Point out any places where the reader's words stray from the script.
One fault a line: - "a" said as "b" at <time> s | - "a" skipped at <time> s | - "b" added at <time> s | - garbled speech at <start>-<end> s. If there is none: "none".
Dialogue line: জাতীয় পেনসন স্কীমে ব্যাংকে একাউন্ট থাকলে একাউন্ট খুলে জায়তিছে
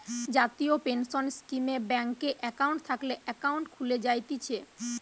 none